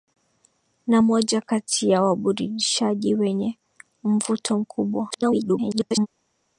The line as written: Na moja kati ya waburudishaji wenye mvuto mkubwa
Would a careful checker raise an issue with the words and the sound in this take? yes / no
yes